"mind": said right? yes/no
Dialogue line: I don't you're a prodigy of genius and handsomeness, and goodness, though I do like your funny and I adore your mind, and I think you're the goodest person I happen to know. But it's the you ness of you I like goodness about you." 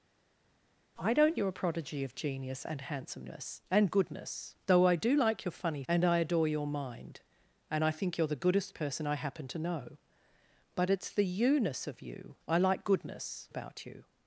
yes